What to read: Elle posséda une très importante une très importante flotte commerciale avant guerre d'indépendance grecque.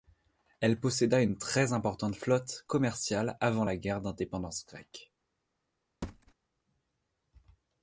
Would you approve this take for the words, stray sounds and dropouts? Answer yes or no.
no